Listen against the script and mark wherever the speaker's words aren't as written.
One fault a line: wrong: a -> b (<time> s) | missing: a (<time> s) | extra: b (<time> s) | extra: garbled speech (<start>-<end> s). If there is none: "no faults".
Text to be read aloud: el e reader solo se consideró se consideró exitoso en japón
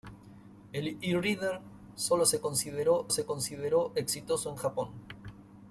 no faults